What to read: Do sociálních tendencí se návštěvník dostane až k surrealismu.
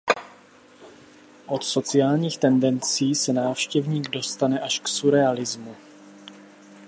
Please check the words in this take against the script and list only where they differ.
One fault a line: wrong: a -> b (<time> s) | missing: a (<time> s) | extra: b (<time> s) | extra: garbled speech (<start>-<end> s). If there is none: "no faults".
wrong: Do -> Od (1.4 s)